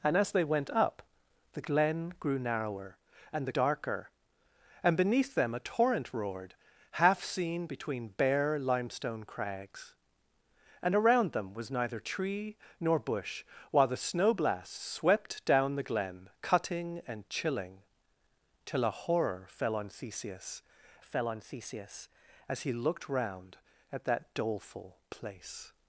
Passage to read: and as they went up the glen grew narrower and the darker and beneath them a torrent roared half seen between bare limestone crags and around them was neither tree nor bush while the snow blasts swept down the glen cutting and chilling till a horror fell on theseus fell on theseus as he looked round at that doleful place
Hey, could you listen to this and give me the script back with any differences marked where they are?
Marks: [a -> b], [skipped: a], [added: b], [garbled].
and as they went up the glen grew narrower and the darker and beneath them a torrent roared half seen between bare limestone crags and around them was neither tree nor bush while the snow blasts swept down the glen cutting and chilling till a horror fell on theseus fell on theseus as he looked round at that doleful place